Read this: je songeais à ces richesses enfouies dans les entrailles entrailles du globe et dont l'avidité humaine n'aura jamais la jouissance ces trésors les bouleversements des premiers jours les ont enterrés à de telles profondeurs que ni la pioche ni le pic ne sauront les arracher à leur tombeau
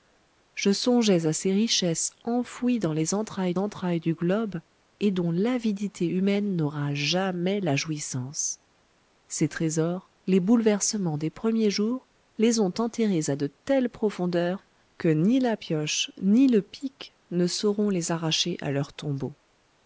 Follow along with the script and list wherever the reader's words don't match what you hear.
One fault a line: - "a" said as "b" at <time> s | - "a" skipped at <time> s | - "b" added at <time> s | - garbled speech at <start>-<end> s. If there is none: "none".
none